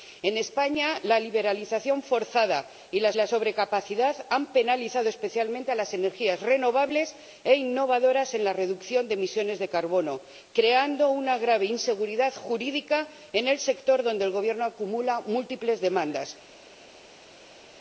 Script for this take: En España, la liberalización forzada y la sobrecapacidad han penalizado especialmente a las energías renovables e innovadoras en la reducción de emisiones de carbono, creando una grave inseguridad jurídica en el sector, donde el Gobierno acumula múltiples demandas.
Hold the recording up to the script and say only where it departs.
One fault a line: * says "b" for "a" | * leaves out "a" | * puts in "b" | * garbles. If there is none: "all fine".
* puts in "la"